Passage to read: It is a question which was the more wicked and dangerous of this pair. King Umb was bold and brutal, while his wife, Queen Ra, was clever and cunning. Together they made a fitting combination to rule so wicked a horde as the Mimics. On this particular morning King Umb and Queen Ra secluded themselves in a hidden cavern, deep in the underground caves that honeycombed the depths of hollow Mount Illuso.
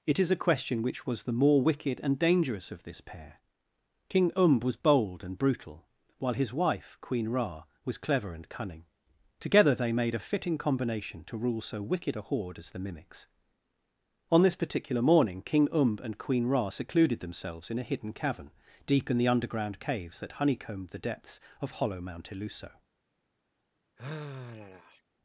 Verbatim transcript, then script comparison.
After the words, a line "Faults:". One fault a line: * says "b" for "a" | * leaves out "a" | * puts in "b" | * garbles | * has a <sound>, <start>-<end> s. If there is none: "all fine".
It is a question which was the more wicked and dangerous of this pair. King Umb was bold and brutal, while his wife, Queen Ra, was clever and cunning. Together they made a fitting combination to rule so wicked a horde as the Mimics. On this particular morning King Umb and Queen Ra secluded themselves in a hidden cavern, deep in the underground caves that honeycombed the depths of hollow Mount Illuso.
Faults:
* has a sigh, 24.0-25.0 s